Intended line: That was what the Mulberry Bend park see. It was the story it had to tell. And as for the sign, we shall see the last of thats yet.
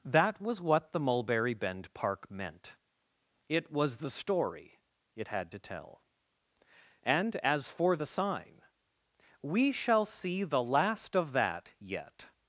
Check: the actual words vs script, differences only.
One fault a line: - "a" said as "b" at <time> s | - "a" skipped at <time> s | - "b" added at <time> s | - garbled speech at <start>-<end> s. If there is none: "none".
- "see" said as "meant" at 2.3 s
- "thats" said as "that" at 11.3 s